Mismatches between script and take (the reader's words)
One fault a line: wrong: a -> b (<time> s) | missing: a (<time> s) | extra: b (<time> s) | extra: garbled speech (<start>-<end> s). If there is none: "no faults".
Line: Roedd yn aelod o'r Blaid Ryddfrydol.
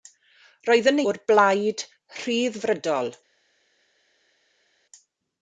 missing: aelod (1.0 s)